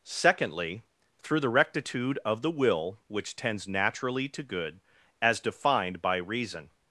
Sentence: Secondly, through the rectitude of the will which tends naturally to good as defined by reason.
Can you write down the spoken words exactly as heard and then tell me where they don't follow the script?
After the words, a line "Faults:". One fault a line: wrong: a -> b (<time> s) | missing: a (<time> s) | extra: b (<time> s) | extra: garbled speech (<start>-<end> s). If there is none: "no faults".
Secondly, through the rectitude of the will which tends naturally to good as defined by reason.
Faults:
no faults